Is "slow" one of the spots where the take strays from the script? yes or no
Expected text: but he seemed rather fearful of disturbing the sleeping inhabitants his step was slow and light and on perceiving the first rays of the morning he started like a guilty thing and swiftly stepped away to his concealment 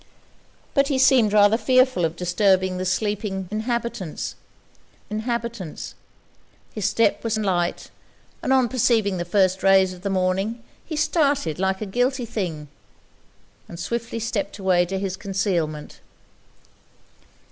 yes